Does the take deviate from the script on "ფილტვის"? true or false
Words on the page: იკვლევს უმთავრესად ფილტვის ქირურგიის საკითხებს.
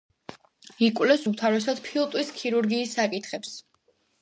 false